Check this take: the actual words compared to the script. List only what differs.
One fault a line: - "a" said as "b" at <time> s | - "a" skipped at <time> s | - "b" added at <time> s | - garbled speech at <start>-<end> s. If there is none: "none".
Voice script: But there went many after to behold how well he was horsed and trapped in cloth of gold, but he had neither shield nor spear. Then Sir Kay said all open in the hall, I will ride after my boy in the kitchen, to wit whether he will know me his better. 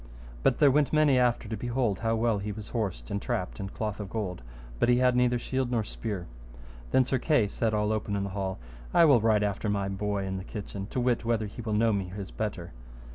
none